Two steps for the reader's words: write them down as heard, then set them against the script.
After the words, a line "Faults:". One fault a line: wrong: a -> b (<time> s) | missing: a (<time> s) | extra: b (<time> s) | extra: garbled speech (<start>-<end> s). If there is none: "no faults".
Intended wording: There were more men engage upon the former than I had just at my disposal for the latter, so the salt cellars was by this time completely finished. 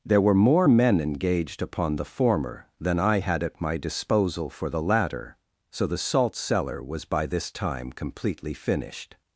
There were more men engaged upon the former than I had at my disposal for the latter, so the salt cellar was by this time completely finished.
Faults:
wrong: engage -> engaged (1.0 s)
missing: just (3.4 s)
wrong: cellars -> cellar (6.4 s)